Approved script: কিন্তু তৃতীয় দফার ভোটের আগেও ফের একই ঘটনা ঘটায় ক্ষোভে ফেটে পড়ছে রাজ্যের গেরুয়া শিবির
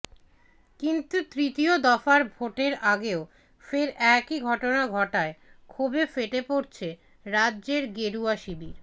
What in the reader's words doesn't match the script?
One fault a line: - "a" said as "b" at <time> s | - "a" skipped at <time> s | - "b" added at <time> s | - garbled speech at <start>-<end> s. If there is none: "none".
none